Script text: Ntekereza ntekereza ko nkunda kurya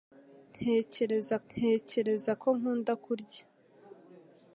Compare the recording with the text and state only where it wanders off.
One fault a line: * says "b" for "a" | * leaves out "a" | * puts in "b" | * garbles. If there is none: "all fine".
all fine